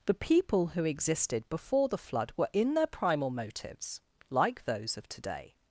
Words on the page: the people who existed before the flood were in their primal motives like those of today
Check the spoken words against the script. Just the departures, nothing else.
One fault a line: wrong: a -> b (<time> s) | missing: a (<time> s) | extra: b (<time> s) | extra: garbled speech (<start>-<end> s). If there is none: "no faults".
no faults